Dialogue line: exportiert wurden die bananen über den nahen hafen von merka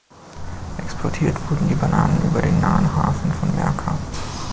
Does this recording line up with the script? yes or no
yes